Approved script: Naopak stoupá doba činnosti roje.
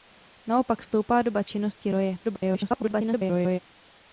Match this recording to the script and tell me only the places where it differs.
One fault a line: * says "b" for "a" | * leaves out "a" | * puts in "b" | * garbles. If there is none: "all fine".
* garbles